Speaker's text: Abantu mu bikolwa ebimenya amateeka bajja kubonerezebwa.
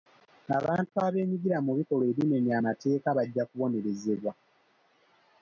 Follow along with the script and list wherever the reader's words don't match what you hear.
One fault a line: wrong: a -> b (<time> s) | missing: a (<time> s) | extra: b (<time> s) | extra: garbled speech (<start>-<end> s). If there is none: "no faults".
extra: abeenyigira (1.1 s)